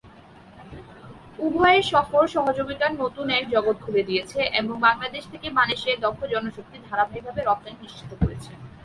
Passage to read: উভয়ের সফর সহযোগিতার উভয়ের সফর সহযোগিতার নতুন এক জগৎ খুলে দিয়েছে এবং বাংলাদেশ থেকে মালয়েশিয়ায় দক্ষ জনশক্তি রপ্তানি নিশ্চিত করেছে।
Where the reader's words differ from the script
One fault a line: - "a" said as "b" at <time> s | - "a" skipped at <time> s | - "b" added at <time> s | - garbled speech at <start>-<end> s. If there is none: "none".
- "উভয়ের সফর সহযোগিতার" skipped at 2.9 s
- "ধারাবাহিকভাবে" added at 6.9 s